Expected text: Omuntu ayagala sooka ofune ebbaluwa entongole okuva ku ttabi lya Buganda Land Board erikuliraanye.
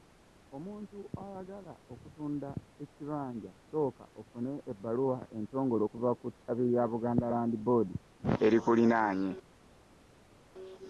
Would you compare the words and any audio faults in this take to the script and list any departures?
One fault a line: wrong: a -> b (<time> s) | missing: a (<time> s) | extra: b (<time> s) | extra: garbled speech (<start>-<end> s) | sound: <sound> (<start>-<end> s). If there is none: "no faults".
extra: okutunda ekibanja (1.9 s)